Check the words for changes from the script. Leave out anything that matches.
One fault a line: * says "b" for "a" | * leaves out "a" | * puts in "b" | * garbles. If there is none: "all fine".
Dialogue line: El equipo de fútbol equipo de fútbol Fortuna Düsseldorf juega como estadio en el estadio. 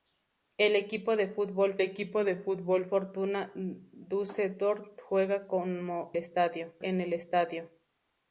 all fine